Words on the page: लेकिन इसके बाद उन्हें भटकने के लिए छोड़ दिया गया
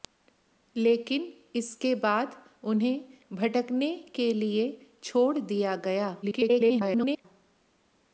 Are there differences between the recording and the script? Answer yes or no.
yes